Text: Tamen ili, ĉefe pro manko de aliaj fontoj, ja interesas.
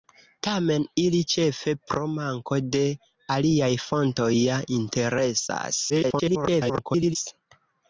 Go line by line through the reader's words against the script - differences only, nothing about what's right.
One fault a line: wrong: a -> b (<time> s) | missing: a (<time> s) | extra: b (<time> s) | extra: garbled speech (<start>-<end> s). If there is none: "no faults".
extra: garbled speech (5.9-7.2 s)